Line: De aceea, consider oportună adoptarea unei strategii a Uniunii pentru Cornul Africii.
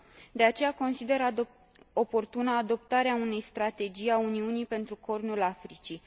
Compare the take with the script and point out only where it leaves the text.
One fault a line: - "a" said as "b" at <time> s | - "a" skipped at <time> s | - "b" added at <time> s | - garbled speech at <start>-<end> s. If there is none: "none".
none